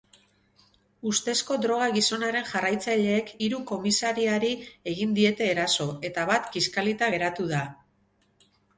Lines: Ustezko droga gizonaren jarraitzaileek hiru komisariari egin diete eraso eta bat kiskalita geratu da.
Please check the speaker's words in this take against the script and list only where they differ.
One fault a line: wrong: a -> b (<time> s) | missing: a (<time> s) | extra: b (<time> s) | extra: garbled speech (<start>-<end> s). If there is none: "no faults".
no faults